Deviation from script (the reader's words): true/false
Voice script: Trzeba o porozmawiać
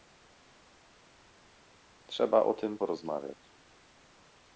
true